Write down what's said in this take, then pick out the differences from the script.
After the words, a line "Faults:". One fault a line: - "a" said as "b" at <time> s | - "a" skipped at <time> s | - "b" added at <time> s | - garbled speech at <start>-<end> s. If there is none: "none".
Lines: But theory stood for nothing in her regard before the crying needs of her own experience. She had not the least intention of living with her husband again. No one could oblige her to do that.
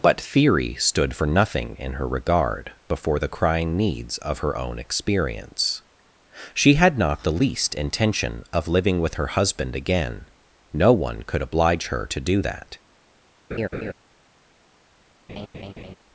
But theory stood for nothing in her regard before the crying needs of her own experience. She had not the least intention of living with her husband again. No one could oblige her to do that.
Faults:
none